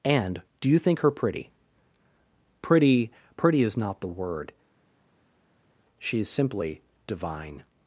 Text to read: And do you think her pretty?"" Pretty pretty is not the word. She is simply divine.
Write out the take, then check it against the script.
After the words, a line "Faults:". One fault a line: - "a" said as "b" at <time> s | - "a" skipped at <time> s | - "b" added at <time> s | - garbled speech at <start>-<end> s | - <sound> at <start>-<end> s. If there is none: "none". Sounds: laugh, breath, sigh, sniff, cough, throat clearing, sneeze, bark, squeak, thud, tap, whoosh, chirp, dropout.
And do you think her pretty?"" Pretty pretty is not the word. She is simply divine.
Faults:
none